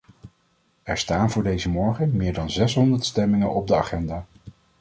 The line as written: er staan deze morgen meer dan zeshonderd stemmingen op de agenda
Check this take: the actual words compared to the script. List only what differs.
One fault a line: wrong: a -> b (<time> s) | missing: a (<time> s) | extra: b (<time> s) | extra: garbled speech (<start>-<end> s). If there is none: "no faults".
extra: voor (1.3 s)